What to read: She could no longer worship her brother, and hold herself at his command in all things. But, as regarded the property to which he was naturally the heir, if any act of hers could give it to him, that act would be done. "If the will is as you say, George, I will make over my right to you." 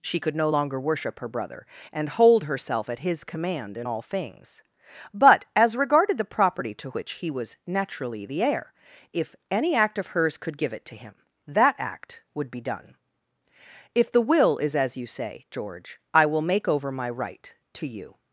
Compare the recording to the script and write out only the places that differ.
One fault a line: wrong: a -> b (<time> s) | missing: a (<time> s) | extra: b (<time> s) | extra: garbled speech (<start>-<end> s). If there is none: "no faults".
no faults